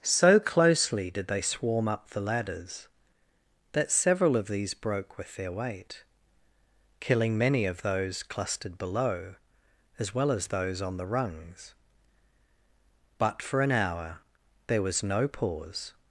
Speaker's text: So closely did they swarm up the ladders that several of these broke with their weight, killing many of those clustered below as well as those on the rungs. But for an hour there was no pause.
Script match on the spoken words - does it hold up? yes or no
yes